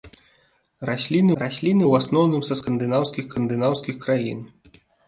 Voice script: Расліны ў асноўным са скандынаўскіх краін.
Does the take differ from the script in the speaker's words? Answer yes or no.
yes